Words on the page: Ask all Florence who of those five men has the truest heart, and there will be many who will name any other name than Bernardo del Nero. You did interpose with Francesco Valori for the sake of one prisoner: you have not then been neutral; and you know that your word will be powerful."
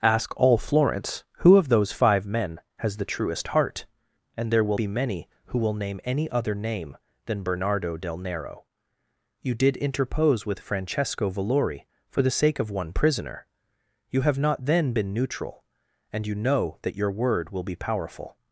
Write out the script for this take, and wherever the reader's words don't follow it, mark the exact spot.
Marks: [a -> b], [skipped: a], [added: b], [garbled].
Ask all Florence who of those five men has the truest heart, and there will be many who will name any other name than Bernardo del Nero. You did interpose with Francesco Valori for the sake of one prisoner: you have not then been neutral; and you know that your word will be powerful."